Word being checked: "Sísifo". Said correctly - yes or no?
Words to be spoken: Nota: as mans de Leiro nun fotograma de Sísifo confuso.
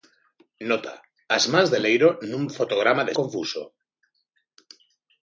no